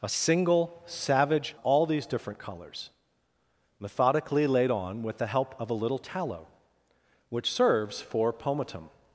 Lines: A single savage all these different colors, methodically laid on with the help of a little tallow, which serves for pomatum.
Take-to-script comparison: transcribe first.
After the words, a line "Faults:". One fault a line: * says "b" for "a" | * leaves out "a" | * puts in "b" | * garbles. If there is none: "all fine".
A single savage all these different colors, methodically laid on with the help of a little tallow, which serves for pomatum.
Faults:
all fine